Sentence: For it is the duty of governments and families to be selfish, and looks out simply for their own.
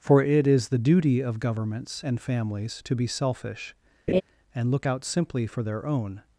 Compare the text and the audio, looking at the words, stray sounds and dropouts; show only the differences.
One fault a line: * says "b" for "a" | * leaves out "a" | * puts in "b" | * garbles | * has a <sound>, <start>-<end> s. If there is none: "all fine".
* has a laugh, 4.1-4.2 s
* says "look" for "looks"